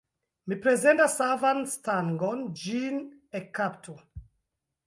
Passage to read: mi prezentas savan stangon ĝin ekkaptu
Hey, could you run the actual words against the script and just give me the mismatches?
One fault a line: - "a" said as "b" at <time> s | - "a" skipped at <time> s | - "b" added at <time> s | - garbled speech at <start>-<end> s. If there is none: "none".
none